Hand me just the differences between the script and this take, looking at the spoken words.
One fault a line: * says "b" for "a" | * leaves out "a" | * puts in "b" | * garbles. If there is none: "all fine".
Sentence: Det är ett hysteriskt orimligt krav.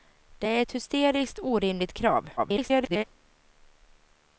* garbles